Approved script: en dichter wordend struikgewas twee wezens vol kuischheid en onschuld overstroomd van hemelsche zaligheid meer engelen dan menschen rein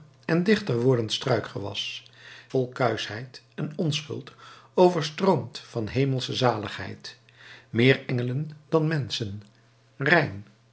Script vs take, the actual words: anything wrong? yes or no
yes